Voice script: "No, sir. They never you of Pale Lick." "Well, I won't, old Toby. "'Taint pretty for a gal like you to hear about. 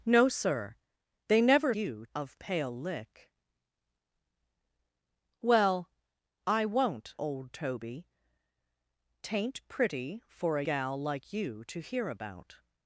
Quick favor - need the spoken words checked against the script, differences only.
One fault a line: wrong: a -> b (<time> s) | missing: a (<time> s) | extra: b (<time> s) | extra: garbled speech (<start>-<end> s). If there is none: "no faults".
no faults